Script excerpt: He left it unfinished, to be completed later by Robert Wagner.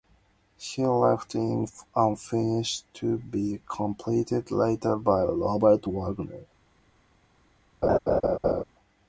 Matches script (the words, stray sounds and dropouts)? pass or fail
fail